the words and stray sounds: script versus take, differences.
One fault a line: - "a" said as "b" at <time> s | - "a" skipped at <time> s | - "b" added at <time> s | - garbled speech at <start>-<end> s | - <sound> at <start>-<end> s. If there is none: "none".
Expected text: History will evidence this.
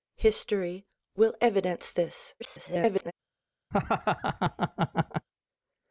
- garbled speech at 2.4-3.1 s
- laugh at 3.7-5.3 s